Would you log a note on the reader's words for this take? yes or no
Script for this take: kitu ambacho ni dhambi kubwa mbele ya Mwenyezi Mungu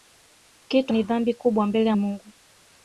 yes